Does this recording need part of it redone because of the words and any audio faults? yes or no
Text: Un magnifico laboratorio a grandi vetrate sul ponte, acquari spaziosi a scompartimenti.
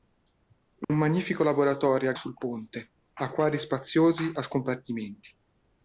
yes